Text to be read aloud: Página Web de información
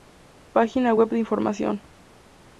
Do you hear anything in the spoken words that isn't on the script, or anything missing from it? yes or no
no